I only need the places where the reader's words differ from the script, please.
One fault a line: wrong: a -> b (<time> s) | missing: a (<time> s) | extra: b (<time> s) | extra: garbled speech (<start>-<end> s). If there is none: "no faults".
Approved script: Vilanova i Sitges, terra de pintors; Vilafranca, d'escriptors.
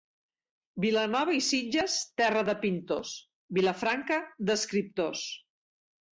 no faults